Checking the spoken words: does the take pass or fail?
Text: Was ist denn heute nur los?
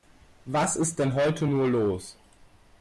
pass